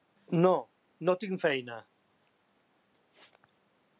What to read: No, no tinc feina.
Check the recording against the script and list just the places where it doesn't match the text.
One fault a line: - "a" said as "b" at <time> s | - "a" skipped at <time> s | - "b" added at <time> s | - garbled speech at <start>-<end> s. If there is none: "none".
none